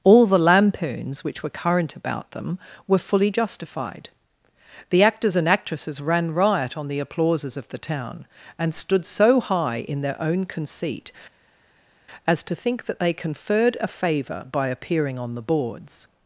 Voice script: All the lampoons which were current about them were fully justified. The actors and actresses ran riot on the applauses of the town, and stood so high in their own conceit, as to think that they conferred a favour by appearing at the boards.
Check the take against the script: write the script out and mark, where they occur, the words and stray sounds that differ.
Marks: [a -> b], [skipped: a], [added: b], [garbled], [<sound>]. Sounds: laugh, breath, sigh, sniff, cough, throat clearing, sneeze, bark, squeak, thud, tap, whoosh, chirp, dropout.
All the lampoons which were current about them were fully justified. The actors and actresses ran riot on the applauses of the town, and stood so high in their own conceit, as to think that they conferred a favour by appearing [at -> on] the boards.